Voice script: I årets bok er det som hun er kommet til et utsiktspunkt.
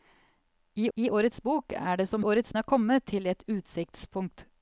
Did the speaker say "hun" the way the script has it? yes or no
no